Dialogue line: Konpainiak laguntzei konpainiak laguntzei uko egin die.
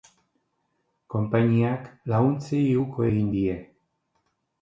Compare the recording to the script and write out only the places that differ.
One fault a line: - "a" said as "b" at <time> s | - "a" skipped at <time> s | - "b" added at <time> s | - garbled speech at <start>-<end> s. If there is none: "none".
- "konpainiak laguntzei" skipped at 2.6 s